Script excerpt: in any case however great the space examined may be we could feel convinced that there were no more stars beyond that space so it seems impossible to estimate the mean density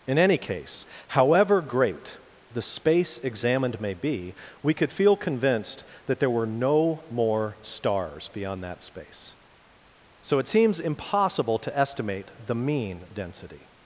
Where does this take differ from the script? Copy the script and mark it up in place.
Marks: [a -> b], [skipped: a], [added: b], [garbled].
in any case however great the space examined may be we could feel convinced that there were no more stars beyond that space so it seems impossible to estimate the mean density